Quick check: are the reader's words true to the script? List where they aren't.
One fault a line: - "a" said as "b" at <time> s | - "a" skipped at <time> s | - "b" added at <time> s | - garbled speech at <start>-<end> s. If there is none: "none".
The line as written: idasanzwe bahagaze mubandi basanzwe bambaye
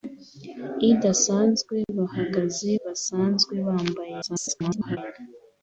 - "mubandi" skipped at 2.7 s
- garbled speech at 4.2-5.0 s